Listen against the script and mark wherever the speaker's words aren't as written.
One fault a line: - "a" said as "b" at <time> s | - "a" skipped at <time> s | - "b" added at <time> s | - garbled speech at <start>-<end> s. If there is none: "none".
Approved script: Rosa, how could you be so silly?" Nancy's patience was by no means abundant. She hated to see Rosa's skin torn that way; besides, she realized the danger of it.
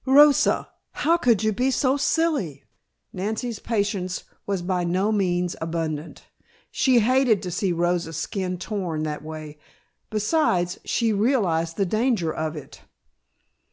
none